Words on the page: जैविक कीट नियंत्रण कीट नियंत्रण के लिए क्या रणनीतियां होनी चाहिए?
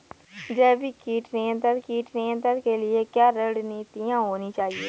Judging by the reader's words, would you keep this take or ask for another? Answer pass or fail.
pass